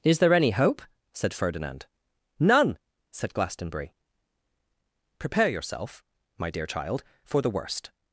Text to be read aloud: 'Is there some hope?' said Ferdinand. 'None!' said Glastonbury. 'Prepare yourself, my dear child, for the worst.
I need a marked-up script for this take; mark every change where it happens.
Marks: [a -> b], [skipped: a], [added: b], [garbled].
'Is there [some -> any] hope?' said Ferdinand. 'None!' said Glastonbury. 'Prepare yourself, my dear child, for the worst.